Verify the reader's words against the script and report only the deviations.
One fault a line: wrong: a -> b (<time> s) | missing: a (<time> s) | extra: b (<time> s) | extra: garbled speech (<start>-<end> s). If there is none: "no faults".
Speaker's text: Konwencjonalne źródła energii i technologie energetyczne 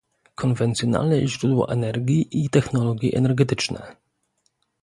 no faults